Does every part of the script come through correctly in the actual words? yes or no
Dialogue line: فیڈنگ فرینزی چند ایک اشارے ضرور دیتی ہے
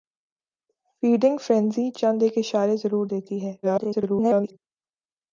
no